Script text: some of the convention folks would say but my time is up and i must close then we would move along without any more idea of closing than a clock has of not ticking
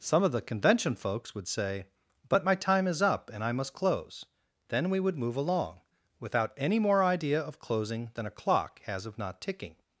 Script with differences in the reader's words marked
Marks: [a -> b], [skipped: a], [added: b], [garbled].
some of the convention folks would say but my time is up and i must close then we would move along without any more idea of closing than a clock has of not ticking